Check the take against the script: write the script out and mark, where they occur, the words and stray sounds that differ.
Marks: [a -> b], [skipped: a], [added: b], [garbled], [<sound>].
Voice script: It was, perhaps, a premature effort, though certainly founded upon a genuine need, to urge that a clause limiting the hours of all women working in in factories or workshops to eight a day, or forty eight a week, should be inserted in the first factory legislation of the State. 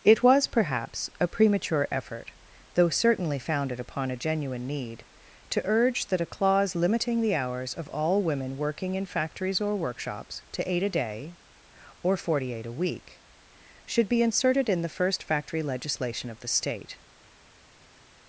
It was, perhaps, a premature effort, though certainly founded upon a genuine need, to urge that a clause limiting the hours of all women working in [skipped: in] factories or workshops to eight a day, or forty eight a week, should be inserted in the first factory legislation of the State.